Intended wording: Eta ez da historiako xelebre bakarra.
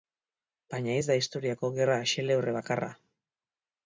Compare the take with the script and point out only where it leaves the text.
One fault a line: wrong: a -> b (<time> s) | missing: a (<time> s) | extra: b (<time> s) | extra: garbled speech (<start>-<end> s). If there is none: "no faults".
wrong: Eta -> Baina (0.7 s)
extra: gerra (1.8 s)